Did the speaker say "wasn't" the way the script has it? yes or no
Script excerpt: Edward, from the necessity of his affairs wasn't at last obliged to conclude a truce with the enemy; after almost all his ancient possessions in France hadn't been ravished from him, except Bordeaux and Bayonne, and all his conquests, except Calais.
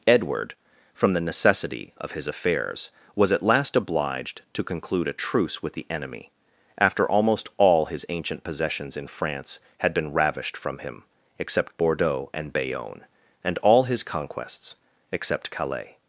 no